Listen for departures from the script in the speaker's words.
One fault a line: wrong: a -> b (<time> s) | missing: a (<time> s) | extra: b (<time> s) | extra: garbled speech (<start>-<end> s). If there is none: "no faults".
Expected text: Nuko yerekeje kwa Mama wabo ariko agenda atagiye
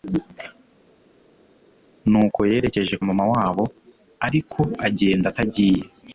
missing: kwa (2.9 s)